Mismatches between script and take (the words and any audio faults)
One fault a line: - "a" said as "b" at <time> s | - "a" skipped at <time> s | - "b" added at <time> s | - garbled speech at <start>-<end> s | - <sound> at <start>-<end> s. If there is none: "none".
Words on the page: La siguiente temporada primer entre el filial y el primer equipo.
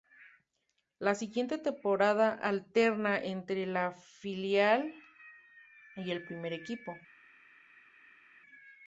- "primer" said as "alterna" at 2.3 s